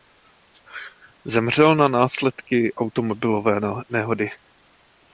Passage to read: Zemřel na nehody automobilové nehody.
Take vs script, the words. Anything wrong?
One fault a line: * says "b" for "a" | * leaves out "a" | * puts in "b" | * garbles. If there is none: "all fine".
* says "následky" for "nehody"